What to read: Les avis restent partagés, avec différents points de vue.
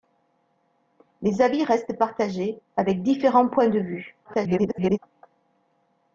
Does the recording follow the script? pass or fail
fail